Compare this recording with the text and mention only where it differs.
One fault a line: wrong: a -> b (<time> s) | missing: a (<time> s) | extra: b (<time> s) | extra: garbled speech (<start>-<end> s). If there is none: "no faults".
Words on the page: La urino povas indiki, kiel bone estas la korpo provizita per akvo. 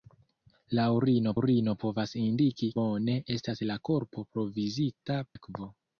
extra: urino (1.4 s)
missing: kiel (2.7 s)
missing: per (5.2 s)